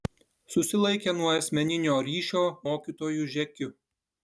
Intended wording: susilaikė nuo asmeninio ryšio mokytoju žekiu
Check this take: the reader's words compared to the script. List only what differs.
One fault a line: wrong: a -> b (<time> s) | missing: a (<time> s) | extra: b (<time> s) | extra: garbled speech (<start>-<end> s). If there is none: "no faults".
no faults